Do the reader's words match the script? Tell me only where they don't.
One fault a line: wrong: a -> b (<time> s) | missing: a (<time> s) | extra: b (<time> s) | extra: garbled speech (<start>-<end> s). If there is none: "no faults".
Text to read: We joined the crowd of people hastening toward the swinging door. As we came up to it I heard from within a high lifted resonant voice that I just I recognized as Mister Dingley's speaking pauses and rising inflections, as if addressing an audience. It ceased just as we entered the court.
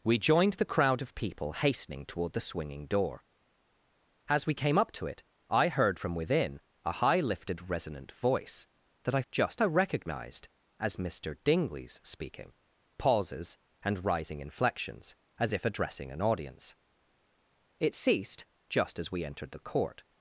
no faults